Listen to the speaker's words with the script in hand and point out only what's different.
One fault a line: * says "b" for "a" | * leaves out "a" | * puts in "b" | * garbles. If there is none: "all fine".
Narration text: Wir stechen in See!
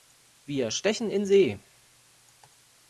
all fine